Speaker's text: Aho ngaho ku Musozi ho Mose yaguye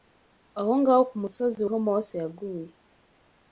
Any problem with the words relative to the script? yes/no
no